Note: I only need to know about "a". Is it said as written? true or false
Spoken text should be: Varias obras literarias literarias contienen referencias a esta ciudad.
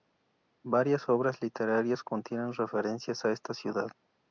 true